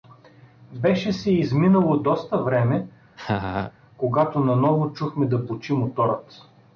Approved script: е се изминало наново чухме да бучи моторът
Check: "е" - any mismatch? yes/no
yes